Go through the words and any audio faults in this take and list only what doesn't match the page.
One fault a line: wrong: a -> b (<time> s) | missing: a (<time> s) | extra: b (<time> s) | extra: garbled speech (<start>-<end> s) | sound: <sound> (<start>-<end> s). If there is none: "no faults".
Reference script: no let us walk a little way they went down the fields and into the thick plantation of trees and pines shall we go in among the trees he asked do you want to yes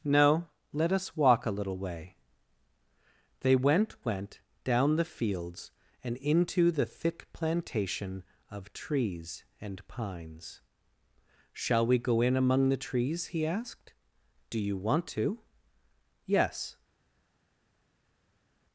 extra: went (4.0 s)